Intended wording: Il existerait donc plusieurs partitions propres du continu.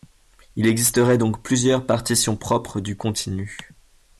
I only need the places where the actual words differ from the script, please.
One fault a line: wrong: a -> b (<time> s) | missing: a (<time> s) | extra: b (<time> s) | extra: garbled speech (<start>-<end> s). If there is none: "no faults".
no faults